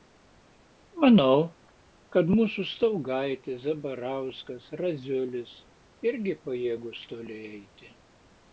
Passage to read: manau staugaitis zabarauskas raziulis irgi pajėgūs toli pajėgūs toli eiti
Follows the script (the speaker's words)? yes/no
no